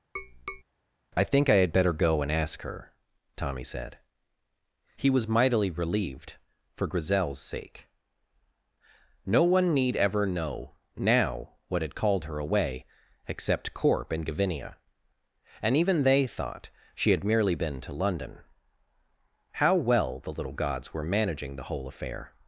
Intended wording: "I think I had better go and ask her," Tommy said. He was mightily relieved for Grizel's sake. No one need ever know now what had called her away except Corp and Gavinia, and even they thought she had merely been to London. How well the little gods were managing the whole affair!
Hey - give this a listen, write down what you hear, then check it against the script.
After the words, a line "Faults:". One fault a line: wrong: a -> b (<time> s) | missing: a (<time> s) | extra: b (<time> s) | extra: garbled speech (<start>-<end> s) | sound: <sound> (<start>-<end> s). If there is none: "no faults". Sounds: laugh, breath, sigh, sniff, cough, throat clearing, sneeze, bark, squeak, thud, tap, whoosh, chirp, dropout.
"I think I had better go and ask her," Tommy said. He was mightily relieved for Grizel's sake. No one need ever know now what had called her away except Corp and Gavinia, and even they thought she had merely been to London. How well the little gods were managing the whole affair!
Faults:
sound: tap (0.2-0.6 s)